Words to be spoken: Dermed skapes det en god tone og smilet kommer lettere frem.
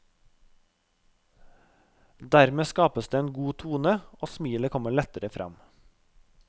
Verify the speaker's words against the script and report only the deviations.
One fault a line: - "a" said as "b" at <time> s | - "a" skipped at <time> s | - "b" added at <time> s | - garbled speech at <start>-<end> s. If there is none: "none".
none